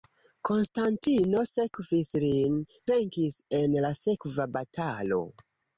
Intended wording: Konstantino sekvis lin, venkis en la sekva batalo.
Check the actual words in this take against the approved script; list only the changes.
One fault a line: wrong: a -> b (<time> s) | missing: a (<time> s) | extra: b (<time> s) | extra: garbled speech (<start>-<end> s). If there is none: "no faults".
no faults